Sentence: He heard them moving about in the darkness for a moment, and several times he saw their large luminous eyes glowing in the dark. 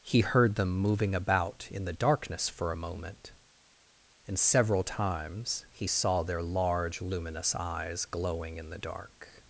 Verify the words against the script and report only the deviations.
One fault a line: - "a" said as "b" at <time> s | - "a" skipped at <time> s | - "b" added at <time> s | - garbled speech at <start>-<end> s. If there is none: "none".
none